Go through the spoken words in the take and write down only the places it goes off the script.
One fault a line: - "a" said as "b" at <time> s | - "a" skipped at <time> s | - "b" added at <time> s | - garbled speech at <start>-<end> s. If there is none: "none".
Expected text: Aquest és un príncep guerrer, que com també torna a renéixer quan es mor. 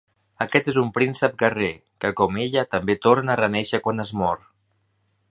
- "ella" added at 2.5 s